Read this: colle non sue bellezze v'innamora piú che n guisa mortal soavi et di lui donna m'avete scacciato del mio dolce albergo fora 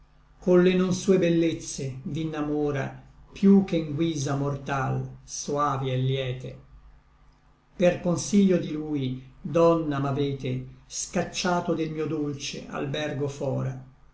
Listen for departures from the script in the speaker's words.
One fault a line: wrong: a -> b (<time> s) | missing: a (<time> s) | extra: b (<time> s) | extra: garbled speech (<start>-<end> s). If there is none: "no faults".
extra: liete per consiglio (6.0 s)